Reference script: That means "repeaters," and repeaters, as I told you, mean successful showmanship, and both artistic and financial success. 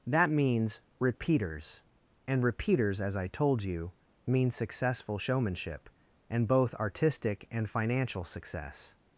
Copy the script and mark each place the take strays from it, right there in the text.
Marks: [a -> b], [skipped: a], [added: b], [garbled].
That means "repeaters," and repeaters, as I told you, mean successful showmanship, and both artistic and financial success.